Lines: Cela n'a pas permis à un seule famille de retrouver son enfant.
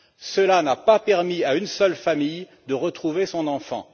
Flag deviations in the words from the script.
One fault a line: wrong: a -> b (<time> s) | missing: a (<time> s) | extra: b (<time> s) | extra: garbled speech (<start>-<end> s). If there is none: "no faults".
wrong: un -> une (1.6 s)